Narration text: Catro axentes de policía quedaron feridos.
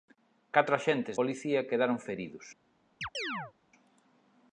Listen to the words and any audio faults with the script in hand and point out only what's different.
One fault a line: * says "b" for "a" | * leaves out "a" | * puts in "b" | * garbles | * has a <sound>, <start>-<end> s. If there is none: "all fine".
* leaves out "de"
* has a chirp, 3.0-3.5 s